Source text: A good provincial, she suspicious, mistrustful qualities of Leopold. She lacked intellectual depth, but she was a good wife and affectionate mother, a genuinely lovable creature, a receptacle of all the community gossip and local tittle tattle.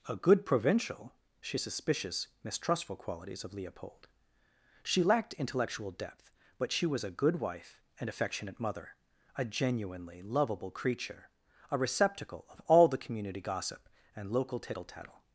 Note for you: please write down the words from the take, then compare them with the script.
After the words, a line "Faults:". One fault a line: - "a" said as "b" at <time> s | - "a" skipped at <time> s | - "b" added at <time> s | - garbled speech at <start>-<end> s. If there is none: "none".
A good provincial, she suspicious, mistrustful qualities of Leopold. She lacked intellectual depth, but she was a good wife and affectionate mother, a genuinely lovable creature, a receptacle of all the community gossip and local tittle tattle.
Faults:
none